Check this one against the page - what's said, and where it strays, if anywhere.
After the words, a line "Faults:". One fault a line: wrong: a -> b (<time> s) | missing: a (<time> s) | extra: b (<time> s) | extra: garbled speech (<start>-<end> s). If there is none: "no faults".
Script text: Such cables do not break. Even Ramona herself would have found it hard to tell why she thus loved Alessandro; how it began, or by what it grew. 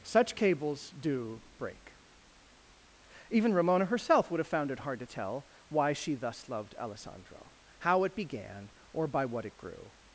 Such cables do break. Even Ramona herself would have found it hard to tell why she thus loved Alessandro; how it began, or by what it grew.
Faults:
missing: not (1.4 s)